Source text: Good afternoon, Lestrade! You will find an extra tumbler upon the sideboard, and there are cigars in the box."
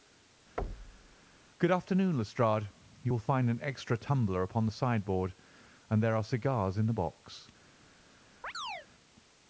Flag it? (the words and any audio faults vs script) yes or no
yes